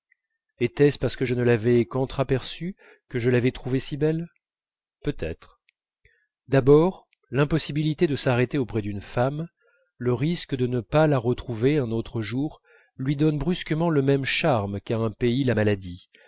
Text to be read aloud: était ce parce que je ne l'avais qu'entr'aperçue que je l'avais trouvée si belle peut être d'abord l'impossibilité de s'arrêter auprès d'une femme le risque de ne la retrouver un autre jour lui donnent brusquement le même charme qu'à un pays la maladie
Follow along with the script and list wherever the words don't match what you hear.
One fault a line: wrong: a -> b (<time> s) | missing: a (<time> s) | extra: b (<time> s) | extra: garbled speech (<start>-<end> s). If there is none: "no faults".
extra: pas (10.8 s)